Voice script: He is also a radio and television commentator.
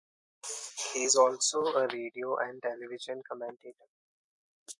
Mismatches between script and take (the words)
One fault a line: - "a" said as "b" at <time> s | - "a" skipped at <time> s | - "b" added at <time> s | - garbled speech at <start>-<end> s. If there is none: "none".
none